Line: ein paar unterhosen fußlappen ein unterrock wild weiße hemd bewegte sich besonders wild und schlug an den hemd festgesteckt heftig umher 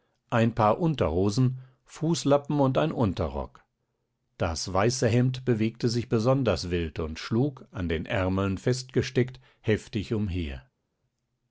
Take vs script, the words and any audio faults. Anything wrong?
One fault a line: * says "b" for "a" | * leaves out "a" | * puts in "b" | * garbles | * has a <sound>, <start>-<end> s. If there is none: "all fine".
* puts in "und"
* says "das" for "wild"
* says "ärmeln" for "hemd"